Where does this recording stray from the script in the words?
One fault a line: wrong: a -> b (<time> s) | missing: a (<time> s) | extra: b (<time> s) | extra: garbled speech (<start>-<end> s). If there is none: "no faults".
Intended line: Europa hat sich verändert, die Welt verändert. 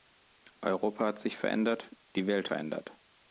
no faults